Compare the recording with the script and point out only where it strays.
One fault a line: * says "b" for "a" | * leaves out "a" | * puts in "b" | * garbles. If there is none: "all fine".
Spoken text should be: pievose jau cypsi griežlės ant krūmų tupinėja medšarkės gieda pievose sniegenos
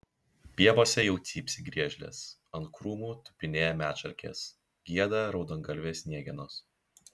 * says "raudongalvės" for "pievose"